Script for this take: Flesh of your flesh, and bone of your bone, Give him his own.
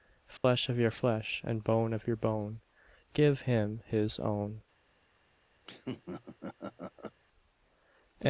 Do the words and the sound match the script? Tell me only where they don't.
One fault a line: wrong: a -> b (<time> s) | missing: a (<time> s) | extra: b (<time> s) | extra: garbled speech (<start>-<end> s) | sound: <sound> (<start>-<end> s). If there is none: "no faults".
sound: dropout (0.4-0.4 s)
sound: laugh (5.6-7.2 s)